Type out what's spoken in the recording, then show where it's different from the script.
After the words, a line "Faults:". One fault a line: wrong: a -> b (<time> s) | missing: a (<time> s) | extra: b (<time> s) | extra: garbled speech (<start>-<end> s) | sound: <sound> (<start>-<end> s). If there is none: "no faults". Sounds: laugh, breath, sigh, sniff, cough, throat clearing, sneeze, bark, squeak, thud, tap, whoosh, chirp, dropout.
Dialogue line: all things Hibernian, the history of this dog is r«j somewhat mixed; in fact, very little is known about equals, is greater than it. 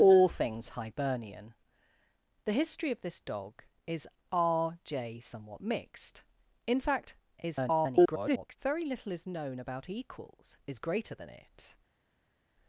all things Hibernian, the history of this dog is r«j somewhat mixed; in fact, [garbled] very little is known about equals, is greater than it.
Faults:
extra: garbled speech (7.4-8.6 s)